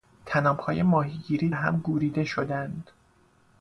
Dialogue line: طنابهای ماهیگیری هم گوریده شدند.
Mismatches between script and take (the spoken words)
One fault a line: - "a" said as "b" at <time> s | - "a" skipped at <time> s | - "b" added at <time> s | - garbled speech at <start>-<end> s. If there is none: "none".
none